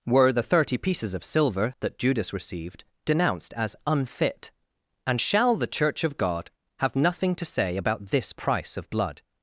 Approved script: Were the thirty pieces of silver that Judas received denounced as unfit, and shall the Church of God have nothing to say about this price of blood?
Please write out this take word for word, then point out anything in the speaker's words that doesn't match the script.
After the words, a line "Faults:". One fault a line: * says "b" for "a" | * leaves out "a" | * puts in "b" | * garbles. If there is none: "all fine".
Were the thirty pieces of silver that Judas received denounced as unfit, and shall the Church of God have nothing to say about this price of blood?
Faults:
all fine